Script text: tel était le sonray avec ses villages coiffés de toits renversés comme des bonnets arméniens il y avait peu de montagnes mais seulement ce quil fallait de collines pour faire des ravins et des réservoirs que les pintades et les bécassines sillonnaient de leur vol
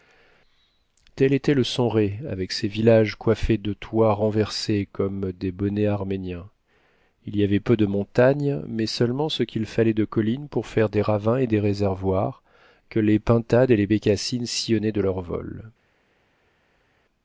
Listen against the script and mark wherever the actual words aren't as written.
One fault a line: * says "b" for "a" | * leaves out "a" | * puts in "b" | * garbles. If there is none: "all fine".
all fine